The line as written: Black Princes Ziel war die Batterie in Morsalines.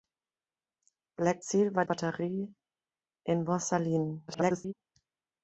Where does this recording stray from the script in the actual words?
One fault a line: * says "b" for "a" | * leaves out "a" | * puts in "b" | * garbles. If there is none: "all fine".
* leaves out "Princes"
* leaves out "die"
* garbles